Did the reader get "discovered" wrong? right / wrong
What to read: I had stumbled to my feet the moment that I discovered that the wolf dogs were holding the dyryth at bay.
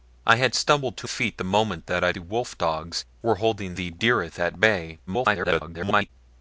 wrong